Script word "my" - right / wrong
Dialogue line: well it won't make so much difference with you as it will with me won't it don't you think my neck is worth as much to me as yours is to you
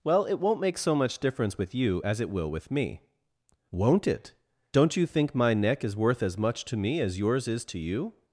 right